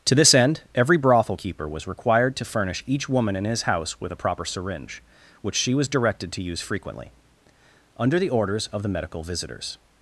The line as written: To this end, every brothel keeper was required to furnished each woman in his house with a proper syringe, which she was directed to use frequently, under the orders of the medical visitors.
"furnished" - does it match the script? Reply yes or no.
no